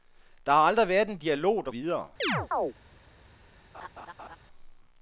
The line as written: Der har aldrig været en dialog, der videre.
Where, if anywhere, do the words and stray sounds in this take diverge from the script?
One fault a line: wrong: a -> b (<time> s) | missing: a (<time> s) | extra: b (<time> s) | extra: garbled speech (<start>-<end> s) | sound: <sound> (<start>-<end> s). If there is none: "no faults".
sound: chirp (2.2-2.7 s)
sound: laugh (3.7-4.4 s)